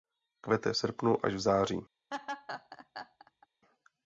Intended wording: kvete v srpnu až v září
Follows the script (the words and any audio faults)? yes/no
no